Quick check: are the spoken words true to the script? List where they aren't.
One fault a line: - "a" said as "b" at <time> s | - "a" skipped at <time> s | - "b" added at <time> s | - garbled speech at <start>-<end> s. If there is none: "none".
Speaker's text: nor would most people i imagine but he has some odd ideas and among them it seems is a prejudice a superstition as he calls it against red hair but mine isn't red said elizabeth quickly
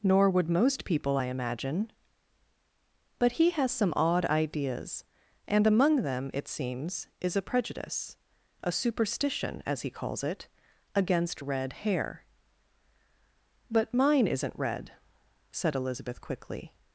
none